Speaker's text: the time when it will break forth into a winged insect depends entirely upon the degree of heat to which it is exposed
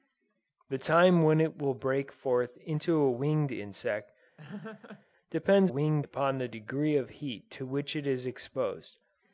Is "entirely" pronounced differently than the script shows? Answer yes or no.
yes